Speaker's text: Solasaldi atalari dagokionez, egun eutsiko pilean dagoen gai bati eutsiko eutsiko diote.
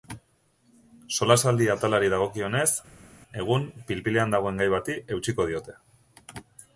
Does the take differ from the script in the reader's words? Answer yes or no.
yes